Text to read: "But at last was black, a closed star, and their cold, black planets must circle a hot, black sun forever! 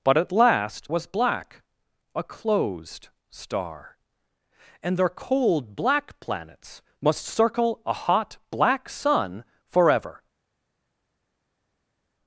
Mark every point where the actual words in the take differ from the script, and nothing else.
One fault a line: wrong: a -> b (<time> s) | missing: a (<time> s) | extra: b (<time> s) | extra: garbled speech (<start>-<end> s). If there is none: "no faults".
no faults